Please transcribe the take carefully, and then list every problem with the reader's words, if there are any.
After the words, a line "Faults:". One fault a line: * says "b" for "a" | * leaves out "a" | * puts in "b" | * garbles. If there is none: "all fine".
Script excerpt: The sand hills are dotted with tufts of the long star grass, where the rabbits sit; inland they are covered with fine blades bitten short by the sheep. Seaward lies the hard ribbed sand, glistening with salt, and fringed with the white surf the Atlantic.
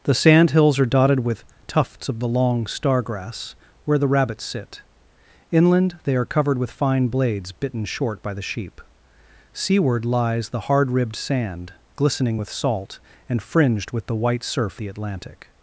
The sand hills are dotted with tufts of the long star grass, where the rabbits sit; inland they are covered with fine blades bitten short by the sheep. Seaward lies the hard ribbed sand, glistening with salt, and fringed with the white surf the Atlantic.
Faults:
all fine